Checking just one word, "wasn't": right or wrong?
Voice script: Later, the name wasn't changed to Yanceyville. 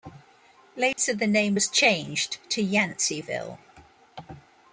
wrong